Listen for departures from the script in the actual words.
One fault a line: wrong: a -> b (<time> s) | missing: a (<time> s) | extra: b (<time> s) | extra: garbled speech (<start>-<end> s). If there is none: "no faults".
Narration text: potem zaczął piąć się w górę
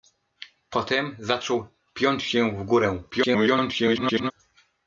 extra: garbled speech (3.1-4.3 s)